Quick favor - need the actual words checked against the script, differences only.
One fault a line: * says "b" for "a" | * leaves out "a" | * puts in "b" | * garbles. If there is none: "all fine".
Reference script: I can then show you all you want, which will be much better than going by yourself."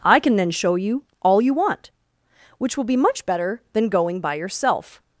all fine